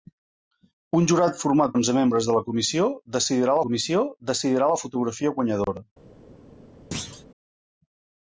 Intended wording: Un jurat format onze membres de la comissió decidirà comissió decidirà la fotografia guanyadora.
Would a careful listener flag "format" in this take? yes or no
no